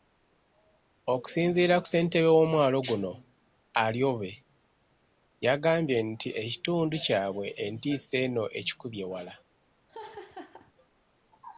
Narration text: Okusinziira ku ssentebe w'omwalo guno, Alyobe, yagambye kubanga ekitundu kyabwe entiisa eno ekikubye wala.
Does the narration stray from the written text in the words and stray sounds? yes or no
yes